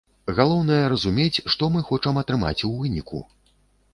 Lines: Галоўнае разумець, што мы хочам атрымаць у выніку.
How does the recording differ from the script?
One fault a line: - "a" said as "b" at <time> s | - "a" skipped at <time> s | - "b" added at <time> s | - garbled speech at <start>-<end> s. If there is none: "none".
none